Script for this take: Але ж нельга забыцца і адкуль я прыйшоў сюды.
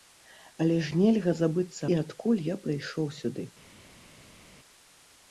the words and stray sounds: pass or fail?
pass